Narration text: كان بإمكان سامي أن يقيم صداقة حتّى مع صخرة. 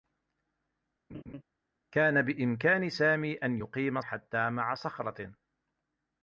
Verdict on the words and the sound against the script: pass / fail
fail